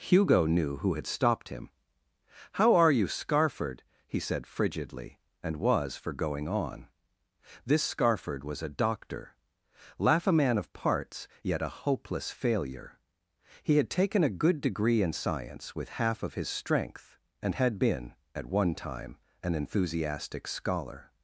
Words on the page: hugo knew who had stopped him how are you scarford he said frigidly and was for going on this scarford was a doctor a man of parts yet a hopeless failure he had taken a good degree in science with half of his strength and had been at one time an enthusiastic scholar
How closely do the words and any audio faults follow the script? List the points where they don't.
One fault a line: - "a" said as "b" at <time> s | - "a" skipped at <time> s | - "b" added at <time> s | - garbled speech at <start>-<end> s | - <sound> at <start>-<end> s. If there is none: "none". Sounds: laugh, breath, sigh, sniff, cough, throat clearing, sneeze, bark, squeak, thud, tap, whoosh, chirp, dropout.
- "laugh" added at 10.0 s